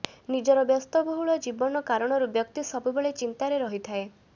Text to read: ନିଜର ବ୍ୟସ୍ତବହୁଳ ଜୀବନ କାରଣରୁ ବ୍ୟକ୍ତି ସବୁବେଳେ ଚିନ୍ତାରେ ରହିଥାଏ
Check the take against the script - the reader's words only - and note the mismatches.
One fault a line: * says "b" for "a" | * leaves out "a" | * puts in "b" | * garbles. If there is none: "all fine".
all fine